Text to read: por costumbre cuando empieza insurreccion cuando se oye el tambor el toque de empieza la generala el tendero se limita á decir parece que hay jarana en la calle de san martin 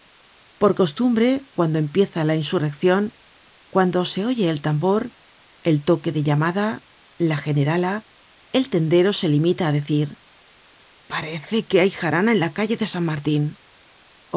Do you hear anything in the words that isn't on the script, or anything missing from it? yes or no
yes